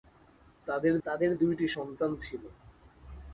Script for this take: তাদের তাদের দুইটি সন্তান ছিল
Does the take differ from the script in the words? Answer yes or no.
no